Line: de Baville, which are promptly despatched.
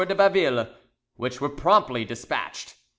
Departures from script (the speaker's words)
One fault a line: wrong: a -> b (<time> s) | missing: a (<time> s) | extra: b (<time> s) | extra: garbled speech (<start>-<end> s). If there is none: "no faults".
wrong: are -> were (1.4 s)